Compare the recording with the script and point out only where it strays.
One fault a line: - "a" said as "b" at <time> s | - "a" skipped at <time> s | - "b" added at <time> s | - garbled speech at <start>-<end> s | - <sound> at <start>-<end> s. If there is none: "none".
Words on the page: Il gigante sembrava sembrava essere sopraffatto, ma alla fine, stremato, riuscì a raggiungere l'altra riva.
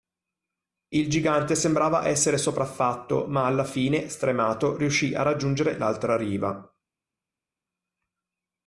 - "sembrava" skipped at 2.1 s